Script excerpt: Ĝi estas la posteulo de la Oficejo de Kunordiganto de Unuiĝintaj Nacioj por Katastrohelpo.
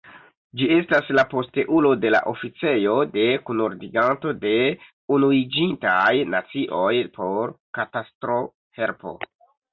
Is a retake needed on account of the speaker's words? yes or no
no